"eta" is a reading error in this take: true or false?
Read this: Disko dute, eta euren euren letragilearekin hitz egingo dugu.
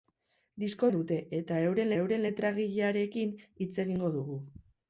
false